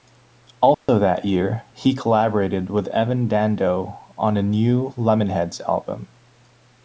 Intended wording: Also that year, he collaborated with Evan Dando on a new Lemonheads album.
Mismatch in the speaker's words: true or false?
false